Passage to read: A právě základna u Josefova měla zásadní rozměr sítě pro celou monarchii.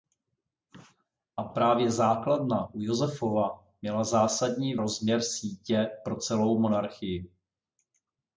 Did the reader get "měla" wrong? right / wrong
right